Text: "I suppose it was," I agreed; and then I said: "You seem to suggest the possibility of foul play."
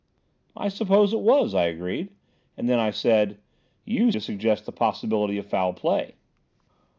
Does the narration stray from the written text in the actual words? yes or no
yes